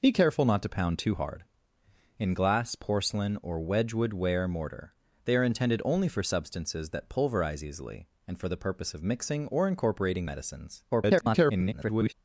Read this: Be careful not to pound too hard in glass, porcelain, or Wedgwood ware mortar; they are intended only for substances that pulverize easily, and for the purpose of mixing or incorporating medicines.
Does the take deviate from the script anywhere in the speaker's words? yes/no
yes